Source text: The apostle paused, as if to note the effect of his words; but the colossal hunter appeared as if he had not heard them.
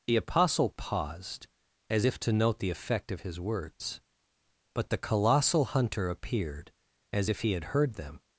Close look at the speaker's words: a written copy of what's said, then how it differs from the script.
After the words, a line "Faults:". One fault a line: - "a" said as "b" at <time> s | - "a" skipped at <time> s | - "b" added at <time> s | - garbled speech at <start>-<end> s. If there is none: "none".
The apostle paused, as if to note the effect of his words; but the colossal hunter appeared as if he had heard them.
Faults:
- "not" skipped at 7.6 s